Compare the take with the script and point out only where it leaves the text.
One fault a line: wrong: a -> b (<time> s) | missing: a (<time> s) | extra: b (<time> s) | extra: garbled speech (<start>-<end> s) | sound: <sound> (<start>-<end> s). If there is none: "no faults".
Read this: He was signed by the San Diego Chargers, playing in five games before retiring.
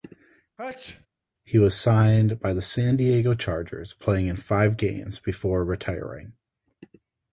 sound: sneeze (0.6-1.1 s)